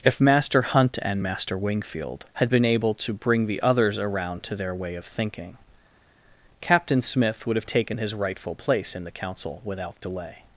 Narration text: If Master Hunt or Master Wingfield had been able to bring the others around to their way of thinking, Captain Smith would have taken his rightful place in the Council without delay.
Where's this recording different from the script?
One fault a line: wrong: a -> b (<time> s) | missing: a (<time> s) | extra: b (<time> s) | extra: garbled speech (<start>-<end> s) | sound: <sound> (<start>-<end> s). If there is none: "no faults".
wrong: or -> and (1.0 s)